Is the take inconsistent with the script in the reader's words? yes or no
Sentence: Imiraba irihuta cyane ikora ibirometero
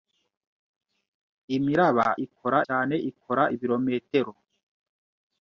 yes